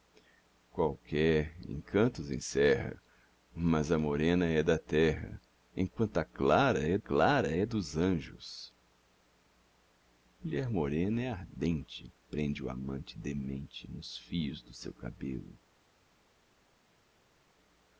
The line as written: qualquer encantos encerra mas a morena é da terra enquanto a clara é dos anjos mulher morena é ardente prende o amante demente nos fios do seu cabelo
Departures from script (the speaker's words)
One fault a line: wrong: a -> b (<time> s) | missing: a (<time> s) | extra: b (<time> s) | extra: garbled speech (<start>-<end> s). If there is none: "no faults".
extra: clara é (7.0 s)